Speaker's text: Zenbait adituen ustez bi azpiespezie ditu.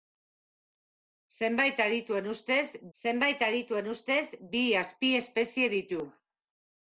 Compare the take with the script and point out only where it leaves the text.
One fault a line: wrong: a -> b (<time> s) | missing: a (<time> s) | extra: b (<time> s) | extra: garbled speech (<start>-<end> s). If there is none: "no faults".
extra: zenbait adituen ustez (3.0 s)